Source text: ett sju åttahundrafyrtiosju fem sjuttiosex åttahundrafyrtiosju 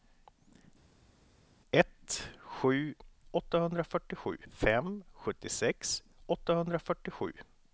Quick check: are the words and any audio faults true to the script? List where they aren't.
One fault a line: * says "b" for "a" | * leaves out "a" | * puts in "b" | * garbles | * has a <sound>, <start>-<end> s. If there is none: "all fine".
all fine